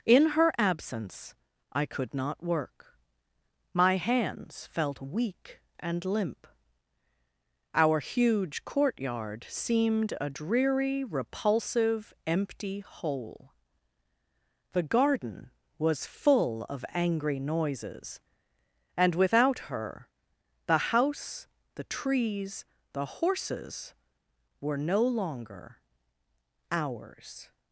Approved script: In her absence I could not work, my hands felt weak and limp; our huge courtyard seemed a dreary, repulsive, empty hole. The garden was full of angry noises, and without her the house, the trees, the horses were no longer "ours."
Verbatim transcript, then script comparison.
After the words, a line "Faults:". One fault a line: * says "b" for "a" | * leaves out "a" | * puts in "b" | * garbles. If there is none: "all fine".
In her absence I could not work, my hands felt weak and limp; our huge courtyard seemed a dreary, repulsive, empty hole. The garden was full of angry noises, and without her the house, the trees, the horses were no longer "ours."
Faults:
all fine